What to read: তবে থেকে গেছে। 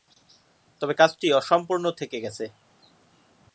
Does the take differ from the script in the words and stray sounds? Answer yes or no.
yes